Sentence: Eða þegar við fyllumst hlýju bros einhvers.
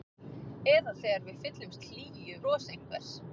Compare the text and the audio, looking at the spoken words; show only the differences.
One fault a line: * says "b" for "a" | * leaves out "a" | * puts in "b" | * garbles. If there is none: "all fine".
all fine